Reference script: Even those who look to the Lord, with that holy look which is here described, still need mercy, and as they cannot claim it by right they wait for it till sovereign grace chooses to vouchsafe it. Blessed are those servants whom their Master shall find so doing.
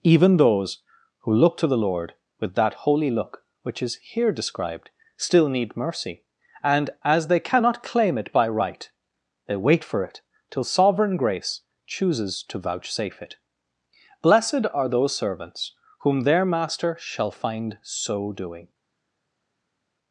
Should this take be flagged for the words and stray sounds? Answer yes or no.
no